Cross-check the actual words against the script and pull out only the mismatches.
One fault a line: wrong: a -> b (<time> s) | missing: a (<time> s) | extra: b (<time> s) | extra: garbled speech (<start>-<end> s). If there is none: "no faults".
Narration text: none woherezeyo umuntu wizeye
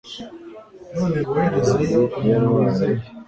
no faults